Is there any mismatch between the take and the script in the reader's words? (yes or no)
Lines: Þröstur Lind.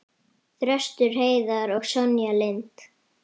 yes